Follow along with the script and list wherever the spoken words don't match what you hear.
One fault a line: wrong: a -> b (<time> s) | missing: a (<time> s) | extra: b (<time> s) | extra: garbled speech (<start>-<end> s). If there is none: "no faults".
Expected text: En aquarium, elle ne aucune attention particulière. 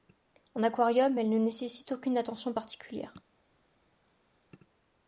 extra: nécessite (1.4 s)